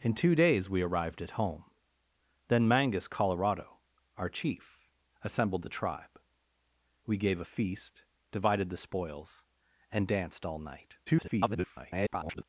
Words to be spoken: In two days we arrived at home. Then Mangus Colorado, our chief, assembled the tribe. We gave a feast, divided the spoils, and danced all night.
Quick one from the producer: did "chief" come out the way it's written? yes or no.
yes